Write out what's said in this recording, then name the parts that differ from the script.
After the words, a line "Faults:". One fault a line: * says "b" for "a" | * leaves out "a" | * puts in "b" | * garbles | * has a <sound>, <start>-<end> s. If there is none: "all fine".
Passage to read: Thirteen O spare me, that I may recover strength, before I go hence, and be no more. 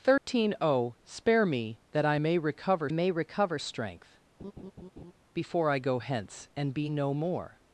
Thirteen O spare me, that I may recover may recover strength, before I go hence, and be no more.
Faults:
* has a dropout, 0.2-0.3 s
* puts in "may recover"
* has a laugh, 4.4-5.1 s